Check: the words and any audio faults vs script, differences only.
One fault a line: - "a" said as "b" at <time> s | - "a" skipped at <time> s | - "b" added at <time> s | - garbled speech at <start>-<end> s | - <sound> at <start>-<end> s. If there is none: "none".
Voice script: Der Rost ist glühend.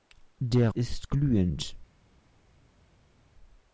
- "Rost" skipped at 0.7 s